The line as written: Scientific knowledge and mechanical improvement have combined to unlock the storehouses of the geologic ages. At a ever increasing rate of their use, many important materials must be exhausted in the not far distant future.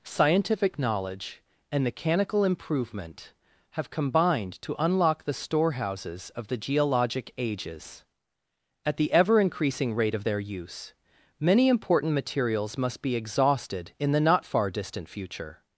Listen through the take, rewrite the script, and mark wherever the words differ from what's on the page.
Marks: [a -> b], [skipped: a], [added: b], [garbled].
Scientific knowledge and mechanical improvement have combined to unlock the storehouses of the geologic ages. At [a -> the] ever increasing rate of their use, many important materials must be exhausted in the not far distant future.